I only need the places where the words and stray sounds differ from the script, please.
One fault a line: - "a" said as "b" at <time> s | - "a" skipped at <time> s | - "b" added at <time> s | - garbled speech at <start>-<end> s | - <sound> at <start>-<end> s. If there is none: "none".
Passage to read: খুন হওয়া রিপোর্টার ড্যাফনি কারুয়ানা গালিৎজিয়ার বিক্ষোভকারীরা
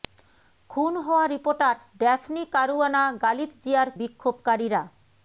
none